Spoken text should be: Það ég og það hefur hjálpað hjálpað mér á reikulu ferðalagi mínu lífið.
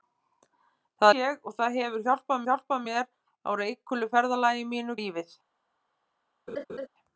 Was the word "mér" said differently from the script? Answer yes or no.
no